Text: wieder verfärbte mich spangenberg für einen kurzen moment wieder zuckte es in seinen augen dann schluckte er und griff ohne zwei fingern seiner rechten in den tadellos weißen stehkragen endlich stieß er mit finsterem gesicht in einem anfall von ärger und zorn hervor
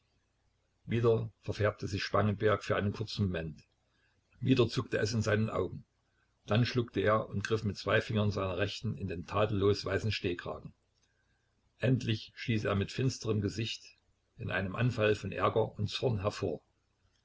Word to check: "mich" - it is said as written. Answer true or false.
false